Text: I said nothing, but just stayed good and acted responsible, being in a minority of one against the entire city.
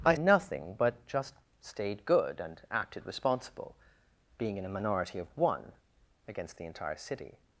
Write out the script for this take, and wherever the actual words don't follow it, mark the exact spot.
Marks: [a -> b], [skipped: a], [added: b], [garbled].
I [skipped: said] nothing, but just stayed good and acted responsible, being in a minority of one against the entire city.